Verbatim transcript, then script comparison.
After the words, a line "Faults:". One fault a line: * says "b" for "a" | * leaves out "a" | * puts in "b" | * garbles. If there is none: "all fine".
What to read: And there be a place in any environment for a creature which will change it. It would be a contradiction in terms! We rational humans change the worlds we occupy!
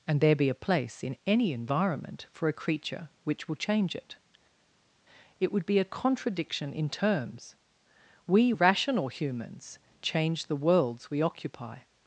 And there be a place in any environment for a creature which will change it. It would be a contradiction in terms! We rational humans change the worlds we occupy!
Faults:
all fine